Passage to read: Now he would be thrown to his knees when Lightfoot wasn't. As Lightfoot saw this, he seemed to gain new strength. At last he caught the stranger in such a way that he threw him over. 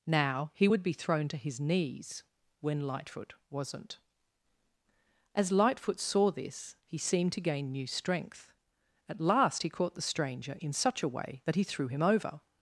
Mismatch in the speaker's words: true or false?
false